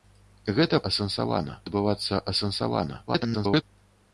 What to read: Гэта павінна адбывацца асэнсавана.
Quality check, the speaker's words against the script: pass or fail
fail